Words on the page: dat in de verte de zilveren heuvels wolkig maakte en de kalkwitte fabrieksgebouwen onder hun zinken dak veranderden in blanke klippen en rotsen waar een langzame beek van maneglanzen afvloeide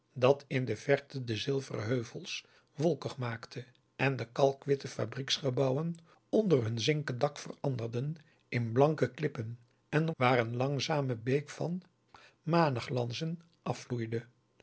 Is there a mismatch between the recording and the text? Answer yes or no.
yes